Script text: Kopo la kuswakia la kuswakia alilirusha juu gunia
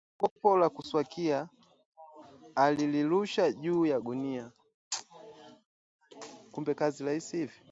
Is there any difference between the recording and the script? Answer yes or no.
yes